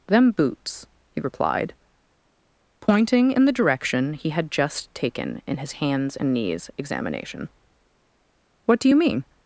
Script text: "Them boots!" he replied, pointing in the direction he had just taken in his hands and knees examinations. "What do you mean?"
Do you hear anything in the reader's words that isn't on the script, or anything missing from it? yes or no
yes